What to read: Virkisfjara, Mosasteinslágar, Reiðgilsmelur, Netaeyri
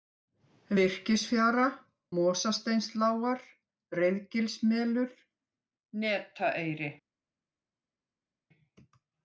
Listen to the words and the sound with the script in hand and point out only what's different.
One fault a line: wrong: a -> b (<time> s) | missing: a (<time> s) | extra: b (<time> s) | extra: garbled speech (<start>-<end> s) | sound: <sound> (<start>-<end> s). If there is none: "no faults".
no faults